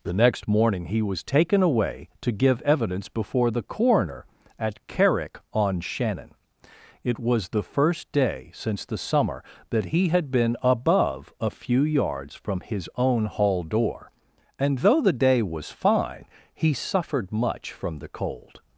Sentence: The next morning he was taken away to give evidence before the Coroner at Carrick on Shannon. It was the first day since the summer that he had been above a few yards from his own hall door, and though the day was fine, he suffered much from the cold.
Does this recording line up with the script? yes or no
yes